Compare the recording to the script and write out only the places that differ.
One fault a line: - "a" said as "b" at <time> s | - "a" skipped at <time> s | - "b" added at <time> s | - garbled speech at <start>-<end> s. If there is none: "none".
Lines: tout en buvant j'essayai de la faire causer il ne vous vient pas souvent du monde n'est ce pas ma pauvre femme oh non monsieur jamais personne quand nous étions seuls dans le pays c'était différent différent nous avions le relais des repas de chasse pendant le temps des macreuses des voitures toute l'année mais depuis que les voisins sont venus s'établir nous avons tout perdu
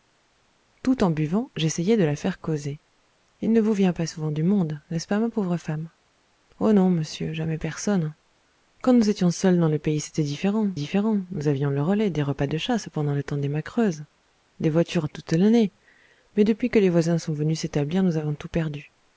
none